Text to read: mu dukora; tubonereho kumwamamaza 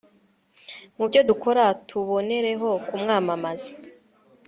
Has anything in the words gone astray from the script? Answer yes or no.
yes